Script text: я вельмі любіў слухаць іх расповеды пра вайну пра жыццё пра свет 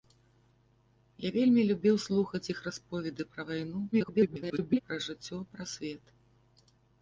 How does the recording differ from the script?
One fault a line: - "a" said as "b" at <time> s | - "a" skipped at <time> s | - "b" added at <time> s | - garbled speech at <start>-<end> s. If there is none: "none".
- garbled speech at 3.9-4.8 s